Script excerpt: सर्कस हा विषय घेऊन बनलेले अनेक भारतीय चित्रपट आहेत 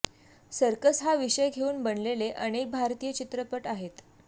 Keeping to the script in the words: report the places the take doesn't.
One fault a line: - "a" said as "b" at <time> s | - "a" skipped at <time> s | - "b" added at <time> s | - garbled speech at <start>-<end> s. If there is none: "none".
none